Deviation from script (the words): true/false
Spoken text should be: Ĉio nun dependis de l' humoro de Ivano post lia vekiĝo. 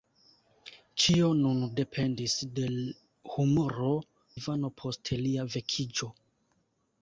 true